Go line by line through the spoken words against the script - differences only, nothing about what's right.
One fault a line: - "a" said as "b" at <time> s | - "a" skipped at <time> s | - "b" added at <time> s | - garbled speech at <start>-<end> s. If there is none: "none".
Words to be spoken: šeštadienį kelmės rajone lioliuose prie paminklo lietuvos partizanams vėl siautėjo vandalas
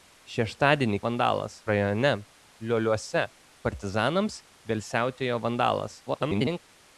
- "kelmės" said as "vandalas" at 1.1 s
- "prie paminklo lietuvos" skipped at 3.2 s
- garbled speech at 6.1-6.6 s